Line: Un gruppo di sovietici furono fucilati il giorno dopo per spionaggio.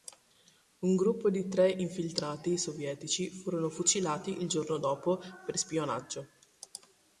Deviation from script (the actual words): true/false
true